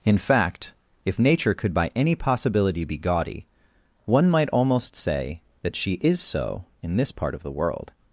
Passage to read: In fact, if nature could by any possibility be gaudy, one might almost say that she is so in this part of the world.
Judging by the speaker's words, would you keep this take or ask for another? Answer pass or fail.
pass